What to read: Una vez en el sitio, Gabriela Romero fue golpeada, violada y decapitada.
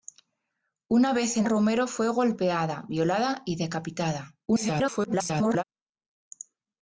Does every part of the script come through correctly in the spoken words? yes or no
no